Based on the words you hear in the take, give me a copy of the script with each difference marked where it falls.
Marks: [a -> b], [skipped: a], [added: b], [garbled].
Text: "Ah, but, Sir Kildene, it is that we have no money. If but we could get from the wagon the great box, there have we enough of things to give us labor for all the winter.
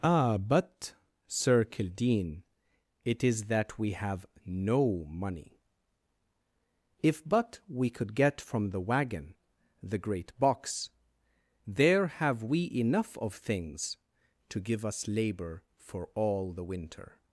"Ah, but, Sir Kildene, it is that we have no money. If but we could get from the wagon the great box, there have we enough of things to give us labor for all the winter.